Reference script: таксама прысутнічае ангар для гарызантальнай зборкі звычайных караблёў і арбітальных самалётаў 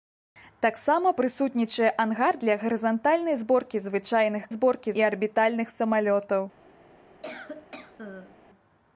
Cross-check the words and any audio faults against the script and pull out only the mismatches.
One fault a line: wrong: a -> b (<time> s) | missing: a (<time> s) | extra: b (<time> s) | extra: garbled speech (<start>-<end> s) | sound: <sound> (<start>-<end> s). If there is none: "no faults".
wrong: караблёў -> зборкі (4.6 s)
sound: cough (7.2-8.4 s)